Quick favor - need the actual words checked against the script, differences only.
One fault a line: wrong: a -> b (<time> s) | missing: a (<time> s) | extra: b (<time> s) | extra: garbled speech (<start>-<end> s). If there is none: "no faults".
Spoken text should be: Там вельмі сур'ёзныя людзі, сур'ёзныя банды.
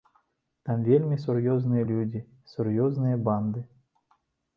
no faults